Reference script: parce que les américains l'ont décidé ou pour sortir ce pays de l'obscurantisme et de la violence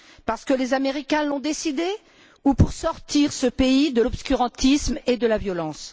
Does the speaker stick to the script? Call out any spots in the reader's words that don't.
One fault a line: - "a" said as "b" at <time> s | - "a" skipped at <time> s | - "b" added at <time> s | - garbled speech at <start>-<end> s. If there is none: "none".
none